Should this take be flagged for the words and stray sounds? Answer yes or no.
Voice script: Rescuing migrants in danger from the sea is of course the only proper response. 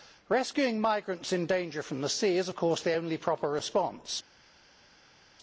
no